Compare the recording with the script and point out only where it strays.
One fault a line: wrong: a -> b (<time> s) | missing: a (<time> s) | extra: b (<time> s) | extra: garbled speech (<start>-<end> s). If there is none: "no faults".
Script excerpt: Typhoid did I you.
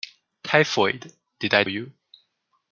no faults